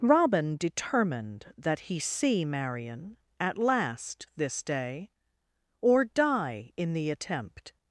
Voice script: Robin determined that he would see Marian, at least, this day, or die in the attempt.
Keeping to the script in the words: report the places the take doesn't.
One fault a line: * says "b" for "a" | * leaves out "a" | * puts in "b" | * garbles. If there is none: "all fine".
* leaves out "would"
* says "last" for "least"